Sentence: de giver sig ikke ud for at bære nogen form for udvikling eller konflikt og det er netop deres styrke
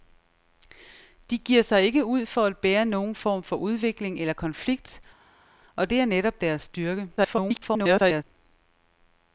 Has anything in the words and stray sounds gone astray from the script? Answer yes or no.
yes